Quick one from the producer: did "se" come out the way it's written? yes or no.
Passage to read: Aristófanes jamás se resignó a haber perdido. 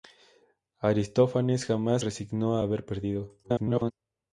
no